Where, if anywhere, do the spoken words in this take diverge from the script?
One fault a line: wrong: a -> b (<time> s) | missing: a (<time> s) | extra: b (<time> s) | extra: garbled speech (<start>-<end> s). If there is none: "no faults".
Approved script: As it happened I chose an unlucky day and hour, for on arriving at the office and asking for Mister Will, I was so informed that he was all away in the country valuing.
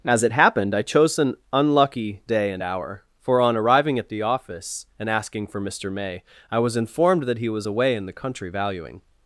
wrong: Will -> May (5.9 s)
missing: so (6.8 s)
missing: all (7.7 s)